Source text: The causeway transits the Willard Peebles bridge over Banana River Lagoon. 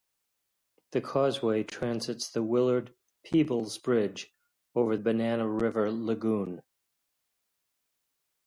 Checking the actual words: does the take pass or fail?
pass